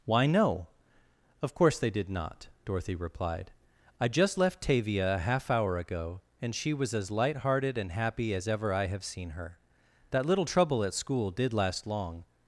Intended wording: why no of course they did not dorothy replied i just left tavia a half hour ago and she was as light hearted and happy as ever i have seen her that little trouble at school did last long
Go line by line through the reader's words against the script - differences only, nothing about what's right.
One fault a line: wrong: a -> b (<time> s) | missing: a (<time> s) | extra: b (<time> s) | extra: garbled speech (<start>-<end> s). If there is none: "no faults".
no faults